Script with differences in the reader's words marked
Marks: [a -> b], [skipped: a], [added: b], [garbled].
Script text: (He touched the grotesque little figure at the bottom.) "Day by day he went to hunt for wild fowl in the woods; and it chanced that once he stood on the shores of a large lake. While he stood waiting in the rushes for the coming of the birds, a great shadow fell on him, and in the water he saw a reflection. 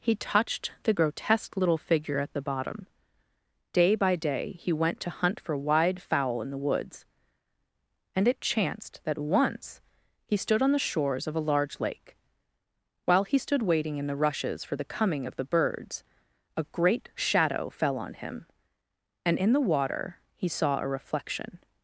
(He touched the grotesque little figure at the bottom.) "Day by day he went to hunt for [wild -> wide] fowl in the woods; and it chanced that once he stood on the shores of a large lake. While he stood waiting in the rushes for the coming of the birds, a great shadow fell on him, and in the water he saw a reflection.